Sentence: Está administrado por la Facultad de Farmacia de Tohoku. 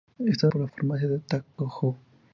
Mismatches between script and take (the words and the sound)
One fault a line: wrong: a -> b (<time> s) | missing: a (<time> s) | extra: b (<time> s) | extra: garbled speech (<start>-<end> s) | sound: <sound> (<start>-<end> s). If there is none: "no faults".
missing: administrado (0.5 s)
missing: Facultad de (0.7 s)
sound: dropout (1.5-1.6 s)